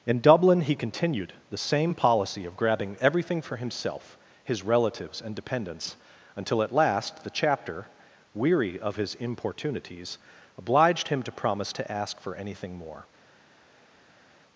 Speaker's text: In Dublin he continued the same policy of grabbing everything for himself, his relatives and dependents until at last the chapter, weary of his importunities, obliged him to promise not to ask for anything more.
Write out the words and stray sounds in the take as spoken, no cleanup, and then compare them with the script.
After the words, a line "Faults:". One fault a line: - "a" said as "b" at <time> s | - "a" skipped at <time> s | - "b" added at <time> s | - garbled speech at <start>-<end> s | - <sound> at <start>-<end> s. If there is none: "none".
In Dublin he continued the same policy of grabbing everything for himself, his relatives and dependents until at last the chapter, weary of his importunities, obliged him to promise to ask for anything more.
Faults:
- "not" skipped at 11.8 s